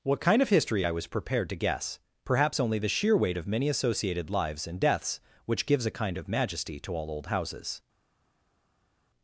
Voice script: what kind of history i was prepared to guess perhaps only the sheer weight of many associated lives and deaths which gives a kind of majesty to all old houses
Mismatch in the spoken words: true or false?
false